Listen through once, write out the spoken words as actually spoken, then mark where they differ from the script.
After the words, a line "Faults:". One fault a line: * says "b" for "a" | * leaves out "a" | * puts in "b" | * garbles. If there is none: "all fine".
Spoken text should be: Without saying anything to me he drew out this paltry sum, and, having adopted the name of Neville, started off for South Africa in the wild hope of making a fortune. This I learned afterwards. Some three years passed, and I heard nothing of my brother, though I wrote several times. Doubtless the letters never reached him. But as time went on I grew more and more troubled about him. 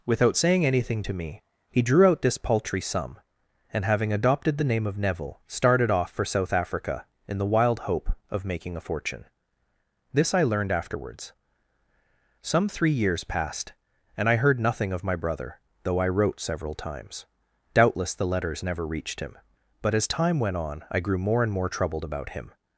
Without saying anything to me he drew out this paltry sum, and, having adopted the name of Neville, started off for South Africa in the wild hope of making a fortune. This I learned afterwards. Some three years passed, and I heard nothing of my brother, though I wrote several times. Doubtless the letters never reached him. But as time went on I grew more and more troubled about him.
Faults:
all fine